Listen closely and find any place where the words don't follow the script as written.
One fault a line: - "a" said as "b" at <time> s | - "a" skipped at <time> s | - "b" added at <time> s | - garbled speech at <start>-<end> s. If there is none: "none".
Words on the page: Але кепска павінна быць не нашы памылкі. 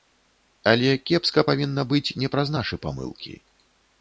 - "праз" added at 2.4 s